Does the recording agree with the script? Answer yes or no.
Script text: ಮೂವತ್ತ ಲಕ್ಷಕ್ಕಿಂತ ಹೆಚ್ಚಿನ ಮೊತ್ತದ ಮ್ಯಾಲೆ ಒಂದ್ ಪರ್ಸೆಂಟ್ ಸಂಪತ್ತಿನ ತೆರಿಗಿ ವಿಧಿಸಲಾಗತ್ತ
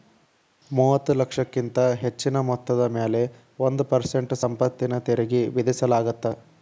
yes